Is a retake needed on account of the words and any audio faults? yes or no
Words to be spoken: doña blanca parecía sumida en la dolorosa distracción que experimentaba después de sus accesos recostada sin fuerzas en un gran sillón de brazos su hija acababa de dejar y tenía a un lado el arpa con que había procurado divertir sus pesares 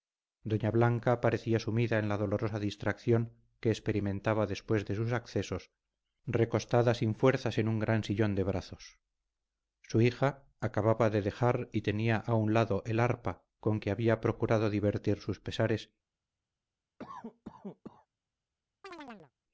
yes